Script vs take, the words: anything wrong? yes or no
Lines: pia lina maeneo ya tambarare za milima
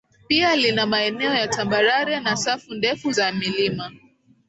yes